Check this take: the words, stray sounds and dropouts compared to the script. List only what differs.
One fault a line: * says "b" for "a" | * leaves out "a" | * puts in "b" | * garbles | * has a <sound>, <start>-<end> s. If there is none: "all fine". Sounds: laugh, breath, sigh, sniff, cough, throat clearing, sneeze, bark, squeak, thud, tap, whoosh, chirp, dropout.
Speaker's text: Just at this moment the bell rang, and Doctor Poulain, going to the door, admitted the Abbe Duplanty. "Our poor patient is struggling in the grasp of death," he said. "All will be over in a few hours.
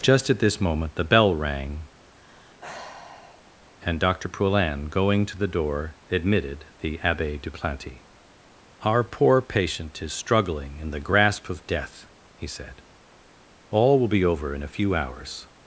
* has a sigh, 2.1-3.6 s